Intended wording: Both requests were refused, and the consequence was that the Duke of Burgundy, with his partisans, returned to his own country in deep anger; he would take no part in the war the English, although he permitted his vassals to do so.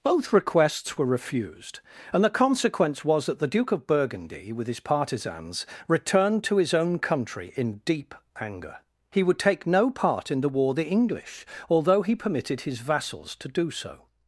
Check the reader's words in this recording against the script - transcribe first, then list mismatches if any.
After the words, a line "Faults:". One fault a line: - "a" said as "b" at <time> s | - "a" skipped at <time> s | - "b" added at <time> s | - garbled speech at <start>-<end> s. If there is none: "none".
Both requests were refused, and the consequence was that the Duke of Burgundy, with his partisans, returned to his own country in deep anger; he would take no part in the war the English, although he permitted his vassals to do so.
Faults:
none